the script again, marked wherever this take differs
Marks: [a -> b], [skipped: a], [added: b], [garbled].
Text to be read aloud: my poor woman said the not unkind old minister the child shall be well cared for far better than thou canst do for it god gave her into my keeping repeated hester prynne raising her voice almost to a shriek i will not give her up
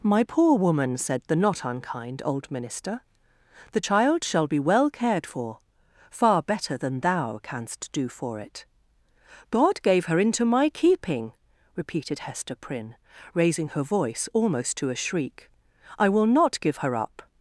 my poor woman said the not unkind old minister the child shall be well cared for far better than thou canst do for it god gave her into my keeping repeated hester prynne raising her voice almost to a shriek i will not give her up